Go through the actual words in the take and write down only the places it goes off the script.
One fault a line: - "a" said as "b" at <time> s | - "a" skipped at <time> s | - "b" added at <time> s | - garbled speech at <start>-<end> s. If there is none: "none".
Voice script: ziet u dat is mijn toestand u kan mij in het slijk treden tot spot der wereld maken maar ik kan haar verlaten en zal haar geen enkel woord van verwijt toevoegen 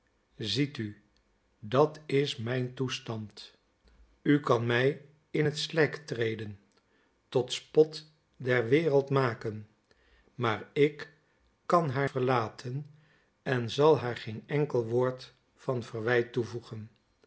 none